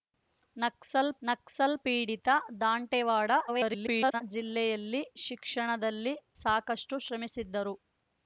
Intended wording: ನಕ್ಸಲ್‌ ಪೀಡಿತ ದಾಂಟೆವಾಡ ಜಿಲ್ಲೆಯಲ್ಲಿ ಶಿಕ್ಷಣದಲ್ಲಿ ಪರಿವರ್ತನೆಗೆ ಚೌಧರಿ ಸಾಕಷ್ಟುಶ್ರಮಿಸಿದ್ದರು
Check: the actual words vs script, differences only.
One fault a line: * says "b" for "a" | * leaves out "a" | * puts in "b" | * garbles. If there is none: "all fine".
* puts in "ನಕ್ಸಲ್"
* garbles
* leaves out "ಪರಿವರ್ತನೆಗೆ ಚೌಧರಿ"